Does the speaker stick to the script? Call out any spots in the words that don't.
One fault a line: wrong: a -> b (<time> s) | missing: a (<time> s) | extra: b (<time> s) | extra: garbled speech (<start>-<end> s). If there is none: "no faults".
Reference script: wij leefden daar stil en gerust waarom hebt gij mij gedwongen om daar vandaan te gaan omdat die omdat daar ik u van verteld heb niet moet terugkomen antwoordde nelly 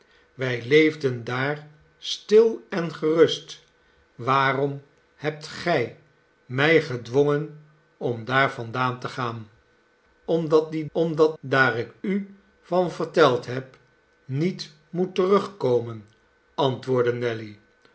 no faults